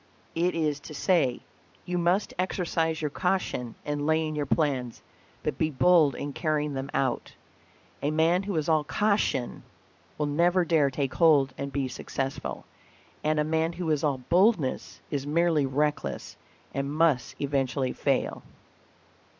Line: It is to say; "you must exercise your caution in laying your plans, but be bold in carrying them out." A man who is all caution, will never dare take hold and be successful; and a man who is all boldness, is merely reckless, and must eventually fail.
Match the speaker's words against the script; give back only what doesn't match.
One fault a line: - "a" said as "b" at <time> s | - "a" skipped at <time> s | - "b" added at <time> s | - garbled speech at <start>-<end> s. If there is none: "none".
none